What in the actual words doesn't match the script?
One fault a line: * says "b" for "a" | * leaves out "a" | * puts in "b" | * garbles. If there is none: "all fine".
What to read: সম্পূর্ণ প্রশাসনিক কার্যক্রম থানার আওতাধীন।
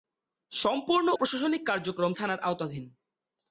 all fine